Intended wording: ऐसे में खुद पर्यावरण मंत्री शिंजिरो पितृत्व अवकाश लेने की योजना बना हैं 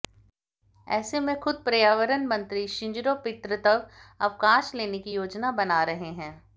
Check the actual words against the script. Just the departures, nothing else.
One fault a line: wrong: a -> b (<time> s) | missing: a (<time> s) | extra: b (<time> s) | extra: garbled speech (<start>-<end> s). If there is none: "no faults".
extra: रहे (5.8 s)